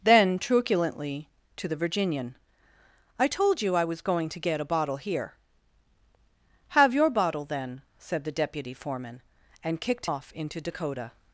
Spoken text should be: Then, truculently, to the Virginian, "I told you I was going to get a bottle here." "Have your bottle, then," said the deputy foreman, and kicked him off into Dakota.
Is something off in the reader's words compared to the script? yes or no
yes